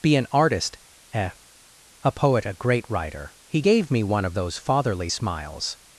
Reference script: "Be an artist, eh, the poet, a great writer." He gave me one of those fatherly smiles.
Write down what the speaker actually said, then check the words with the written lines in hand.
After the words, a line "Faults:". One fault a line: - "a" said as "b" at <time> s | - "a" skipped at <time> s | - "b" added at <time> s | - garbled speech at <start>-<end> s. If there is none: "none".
"Be an artist, eh, a poet, a great writer." He gave me one of those fatherly smiles.
Faults:
- "the" said as "a" at 2.0 s